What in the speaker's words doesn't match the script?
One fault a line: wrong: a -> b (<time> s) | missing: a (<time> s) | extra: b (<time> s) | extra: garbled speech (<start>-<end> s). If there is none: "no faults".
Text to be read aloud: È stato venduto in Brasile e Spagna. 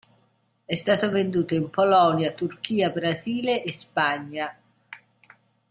extra: Polonia Turchia (1.7 s)